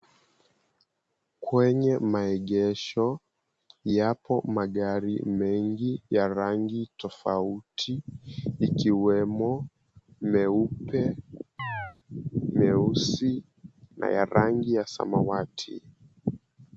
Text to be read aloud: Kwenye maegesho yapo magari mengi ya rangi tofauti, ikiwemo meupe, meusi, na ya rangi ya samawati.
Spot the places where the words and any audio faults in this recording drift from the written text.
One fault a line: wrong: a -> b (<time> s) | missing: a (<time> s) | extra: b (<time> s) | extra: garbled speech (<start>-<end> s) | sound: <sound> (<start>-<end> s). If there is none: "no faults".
sound: chirp (11.6-12.0 s)